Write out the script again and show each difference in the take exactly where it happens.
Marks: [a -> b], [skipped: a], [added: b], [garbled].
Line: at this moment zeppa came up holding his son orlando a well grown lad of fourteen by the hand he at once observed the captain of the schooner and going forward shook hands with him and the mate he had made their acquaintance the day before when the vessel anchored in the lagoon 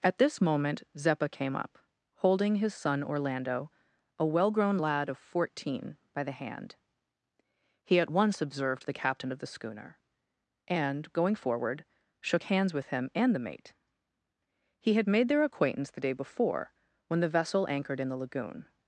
at this moment zeppa came up holding his son orlando a well grown lad of fourteen by the hand he at once observed the captain of the schooner and going forward shook hands with him and the mate he had made their acquaintance the day before when the vessel anchored in the lagoon